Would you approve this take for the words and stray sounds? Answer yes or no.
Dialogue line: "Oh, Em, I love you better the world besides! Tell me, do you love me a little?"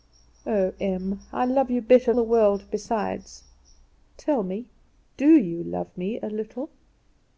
yes